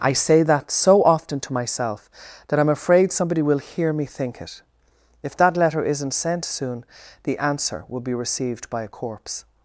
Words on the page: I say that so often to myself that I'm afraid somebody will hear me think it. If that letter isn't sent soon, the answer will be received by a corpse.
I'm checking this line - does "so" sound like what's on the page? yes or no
yes